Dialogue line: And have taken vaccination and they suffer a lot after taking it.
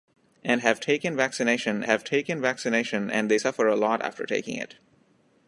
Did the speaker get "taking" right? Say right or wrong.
right